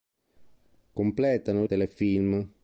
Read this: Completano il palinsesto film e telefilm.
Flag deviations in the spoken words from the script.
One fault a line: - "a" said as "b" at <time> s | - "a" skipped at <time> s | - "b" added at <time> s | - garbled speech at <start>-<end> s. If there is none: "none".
- "il palinsesto film" skipped at 1.7 s